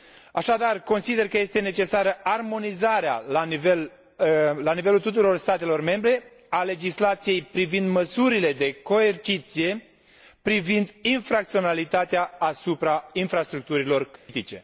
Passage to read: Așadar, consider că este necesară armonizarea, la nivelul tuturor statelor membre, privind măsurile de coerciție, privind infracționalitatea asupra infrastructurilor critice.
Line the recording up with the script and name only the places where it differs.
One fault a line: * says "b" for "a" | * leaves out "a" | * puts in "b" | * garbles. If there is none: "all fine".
* puts in "a legislației"